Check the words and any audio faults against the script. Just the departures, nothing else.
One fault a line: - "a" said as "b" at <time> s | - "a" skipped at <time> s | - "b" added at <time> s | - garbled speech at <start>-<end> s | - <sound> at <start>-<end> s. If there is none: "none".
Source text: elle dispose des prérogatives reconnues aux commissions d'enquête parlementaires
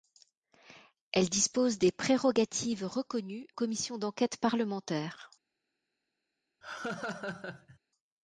- "aux" skipped at 3.5 s
- laugh at 6.6-7.8 s